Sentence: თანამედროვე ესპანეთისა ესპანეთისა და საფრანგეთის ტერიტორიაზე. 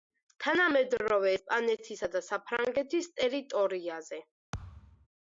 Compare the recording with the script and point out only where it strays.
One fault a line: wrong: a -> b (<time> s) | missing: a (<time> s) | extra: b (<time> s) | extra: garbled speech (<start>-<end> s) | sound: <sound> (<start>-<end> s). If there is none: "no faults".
missing: ესპანეთისა (2.1 s)
sound: thud (4.5-5.1 s)